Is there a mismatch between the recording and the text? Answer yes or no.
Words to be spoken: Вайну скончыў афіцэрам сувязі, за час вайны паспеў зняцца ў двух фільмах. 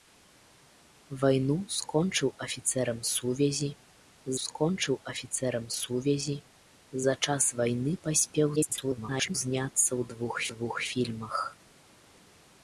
yes